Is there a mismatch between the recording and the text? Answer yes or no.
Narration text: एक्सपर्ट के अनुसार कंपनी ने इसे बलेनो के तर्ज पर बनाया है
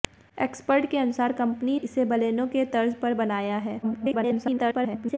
yes